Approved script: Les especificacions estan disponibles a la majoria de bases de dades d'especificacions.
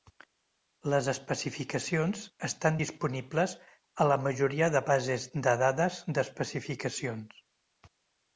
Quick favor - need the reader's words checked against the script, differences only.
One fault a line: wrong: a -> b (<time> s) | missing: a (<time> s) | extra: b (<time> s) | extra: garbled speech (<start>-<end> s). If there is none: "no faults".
no faults